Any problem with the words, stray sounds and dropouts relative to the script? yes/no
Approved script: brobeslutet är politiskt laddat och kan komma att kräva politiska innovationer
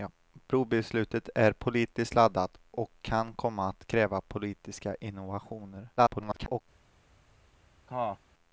yes